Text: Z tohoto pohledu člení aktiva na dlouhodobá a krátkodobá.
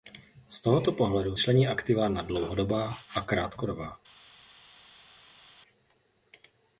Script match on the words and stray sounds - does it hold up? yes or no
yes